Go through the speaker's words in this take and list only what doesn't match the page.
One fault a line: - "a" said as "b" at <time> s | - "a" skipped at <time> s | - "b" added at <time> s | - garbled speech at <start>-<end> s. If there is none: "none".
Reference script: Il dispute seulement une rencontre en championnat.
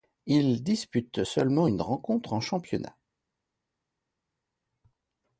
none